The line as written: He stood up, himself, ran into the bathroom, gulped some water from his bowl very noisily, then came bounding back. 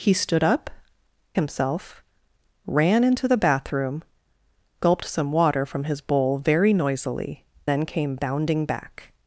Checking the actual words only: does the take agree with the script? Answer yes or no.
yes